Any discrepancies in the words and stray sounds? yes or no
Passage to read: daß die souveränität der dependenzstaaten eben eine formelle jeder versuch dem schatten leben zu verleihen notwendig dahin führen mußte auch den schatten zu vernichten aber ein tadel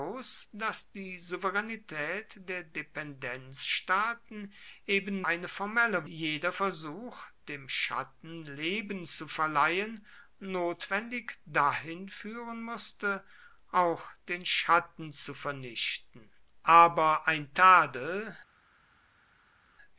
no